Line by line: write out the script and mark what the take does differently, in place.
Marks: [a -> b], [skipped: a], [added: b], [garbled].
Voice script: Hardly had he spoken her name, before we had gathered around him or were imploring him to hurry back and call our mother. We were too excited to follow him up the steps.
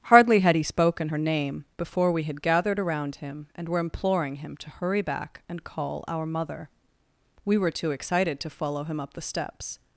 Hardly had he spoken her name, before we had gathered around him [or -> and] were imploring him to hurry back and call our mother. We were too excited to follow him up the steps.